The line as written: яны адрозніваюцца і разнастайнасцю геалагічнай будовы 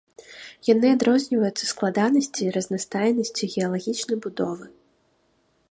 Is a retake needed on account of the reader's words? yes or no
yes